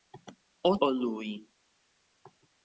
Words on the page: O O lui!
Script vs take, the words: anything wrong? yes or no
no